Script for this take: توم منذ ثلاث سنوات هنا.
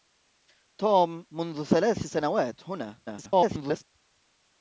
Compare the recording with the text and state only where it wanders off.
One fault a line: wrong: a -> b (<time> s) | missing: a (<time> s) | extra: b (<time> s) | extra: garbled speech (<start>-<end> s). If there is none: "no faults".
extra: garbled speech (3.1-3.8 s)